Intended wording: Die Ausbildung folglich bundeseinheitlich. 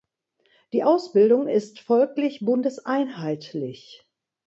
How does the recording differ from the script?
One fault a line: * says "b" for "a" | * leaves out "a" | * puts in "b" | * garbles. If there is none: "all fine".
* puts in "ist"